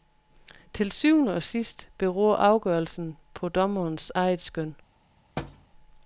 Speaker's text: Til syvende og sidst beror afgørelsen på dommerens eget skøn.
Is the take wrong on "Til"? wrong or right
right